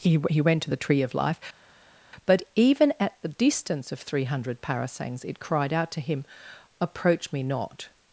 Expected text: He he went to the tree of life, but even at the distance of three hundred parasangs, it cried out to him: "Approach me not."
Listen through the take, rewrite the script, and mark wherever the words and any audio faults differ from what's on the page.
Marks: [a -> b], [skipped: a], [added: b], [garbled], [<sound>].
He he went to the tree of life, but even at the distance of three hundred parasangs, it cried out to him: "Approach me not."